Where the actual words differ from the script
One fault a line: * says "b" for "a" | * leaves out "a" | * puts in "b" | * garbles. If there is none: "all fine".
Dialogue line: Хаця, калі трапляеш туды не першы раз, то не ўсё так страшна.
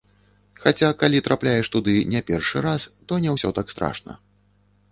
all fine